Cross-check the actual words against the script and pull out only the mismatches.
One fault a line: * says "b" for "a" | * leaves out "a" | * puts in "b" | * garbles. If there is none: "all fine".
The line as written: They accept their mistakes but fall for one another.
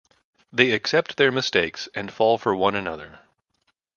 * says "and" for "but"